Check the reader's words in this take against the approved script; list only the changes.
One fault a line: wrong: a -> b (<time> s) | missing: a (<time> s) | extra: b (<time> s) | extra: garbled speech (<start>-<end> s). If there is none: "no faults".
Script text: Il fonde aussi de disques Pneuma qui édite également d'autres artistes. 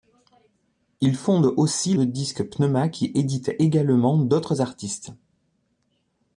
no faults